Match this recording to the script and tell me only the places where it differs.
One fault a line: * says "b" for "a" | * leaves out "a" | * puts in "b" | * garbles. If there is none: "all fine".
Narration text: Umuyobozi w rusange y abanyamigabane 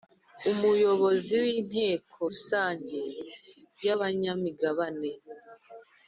* puts in "inteko"